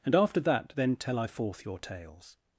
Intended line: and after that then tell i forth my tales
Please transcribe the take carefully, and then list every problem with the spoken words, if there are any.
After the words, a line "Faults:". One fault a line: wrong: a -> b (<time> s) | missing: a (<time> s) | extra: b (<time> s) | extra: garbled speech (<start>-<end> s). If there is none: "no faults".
and after that then tell i forth your tales
Faults:
wrong: my -> your (1.7 s)